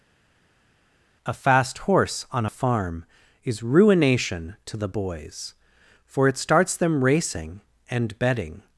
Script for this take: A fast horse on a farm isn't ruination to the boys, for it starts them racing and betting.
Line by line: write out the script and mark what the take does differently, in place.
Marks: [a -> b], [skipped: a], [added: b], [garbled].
A fast horse on a farm [isn't -> is] ruination to the boys, for it starts them racing and betting.